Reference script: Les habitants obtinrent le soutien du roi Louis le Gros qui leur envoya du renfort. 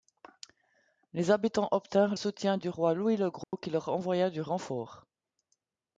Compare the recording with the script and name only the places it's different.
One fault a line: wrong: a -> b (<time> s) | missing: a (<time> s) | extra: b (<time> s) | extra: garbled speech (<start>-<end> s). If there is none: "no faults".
missing: le (2.1 s)